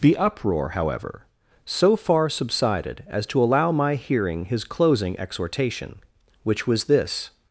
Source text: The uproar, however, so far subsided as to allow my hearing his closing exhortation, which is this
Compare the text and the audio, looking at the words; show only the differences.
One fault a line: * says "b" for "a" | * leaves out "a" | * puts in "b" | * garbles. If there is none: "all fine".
* says "was" for "is"